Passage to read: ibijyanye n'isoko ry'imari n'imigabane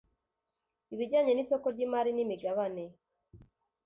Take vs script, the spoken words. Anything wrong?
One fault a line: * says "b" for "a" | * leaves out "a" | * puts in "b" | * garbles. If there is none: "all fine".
all fine